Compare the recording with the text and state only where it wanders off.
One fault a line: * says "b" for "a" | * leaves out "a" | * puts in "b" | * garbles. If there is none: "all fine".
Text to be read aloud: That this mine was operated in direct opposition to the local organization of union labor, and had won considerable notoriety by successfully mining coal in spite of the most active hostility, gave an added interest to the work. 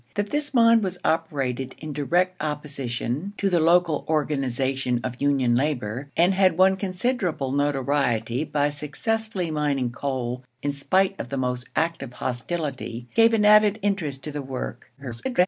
* garbles